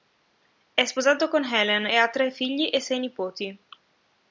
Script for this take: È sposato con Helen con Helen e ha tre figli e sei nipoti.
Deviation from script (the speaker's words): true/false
true